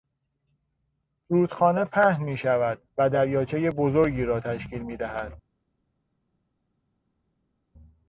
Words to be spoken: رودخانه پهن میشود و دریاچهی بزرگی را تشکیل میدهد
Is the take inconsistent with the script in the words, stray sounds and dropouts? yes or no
no